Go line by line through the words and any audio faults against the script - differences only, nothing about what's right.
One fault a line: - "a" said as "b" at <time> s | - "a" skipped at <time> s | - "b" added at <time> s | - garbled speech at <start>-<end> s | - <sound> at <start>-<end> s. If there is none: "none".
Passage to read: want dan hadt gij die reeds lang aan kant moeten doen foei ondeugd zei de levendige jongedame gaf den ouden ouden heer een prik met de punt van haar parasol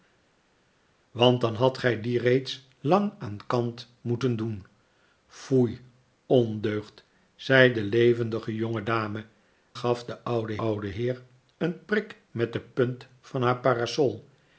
none